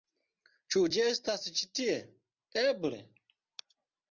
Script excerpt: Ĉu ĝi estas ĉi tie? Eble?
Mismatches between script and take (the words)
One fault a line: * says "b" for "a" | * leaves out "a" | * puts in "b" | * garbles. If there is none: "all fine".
all fine